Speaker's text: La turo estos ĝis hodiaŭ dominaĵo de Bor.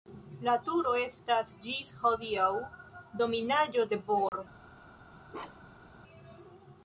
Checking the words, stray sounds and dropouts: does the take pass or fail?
fail